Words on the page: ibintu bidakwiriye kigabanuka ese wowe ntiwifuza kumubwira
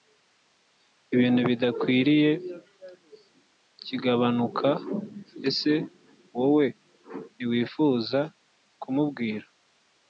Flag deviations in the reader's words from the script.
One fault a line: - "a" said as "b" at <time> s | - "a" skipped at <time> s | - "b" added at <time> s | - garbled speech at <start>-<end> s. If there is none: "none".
none